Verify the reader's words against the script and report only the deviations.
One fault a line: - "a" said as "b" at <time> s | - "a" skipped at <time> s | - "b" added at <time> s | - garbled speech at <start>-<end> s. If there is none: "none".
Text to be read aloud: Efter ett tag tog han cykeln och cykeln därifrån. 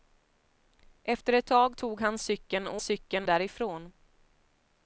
none